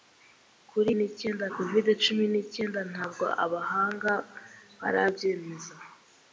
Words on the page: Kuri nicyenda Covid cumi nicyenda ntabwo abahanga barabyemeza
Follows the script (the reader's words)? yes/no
yes